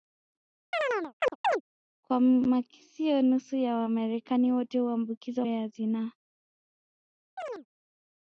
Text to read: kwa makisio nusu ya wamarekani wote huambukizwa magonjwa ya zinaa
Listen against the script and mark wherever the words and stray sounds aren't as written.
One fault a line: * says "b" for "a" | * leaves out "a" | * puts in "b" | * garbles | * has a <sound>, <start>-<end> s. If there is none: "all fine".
* has a chirp, 0.7-1.6 s
* leaves out "magonjwa"
* has a chirp, 7.4-7.7 s